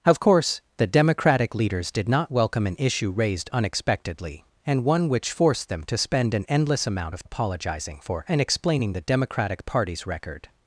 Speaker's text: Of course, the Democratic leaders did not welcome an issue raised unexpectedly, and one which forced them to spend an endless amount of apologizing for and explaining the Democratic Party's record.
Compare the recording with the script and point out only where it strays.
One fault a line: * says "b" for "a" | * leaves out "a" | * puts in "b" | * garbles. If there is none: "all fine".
all fine